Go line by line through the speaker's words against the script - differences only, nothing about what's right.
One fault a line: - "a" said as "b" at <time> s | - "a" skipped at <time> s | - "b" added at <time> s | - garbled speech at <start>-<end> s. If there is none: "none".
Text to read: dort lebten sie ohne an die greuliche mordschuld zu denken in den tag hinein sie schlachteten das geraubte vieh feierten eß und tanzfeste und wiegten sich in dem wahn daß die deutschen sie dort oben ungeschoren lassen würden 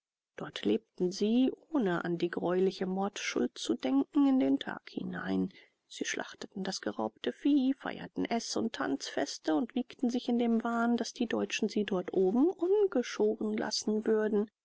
none